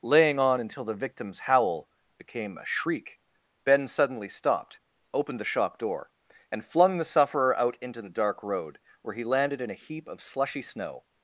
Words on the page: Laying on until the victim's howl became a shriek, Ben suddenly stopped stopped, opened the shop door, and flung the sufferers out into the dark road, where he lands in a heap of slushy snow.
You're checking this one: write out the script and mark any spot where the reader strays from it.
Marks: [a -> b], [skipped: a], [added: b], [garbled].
Laying on until the victim's howl became a shriek, Ben suddenly stopped [skipped: stopped,] opened the shop door, and flung the [sufferers -> sufferer] out into the dark road, where he [lands -> landed] in a heap of slushy snow.